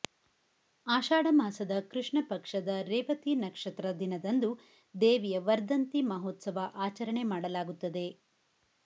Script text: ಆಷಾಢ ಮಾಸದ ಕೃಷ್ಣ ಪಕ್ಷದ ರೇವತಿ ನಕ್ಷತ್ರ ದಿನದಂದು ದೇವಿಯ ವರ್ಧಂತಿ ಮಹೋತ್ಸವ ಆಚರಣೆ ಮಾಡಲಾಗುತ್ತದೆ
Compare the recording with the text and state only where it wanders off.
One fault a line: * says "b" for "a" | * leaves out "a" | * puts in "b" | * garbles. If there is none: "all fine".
all fine